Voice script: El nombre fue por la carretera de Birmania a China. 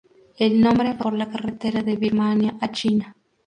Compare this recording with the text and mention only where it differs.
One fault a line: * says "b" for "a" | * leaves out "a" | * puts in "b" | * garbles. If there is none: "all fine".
all fine